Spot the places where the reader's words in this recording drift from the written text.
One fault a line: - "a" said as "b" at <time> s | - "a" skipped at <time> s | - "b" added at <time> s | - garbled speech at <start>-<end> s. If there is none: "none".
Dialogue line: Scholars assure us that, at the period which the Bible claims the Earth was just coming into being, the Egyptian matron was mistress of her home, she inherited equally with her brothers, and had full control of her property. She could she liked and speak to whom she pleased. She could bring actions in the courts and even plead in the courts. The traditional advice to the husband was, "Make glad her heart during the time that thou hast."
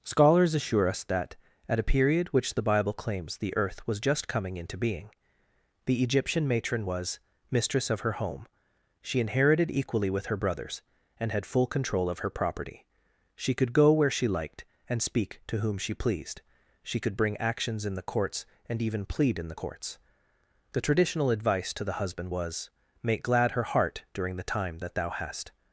- "the" said as "a" at 1.8 s
- "go where" added at 13.7 s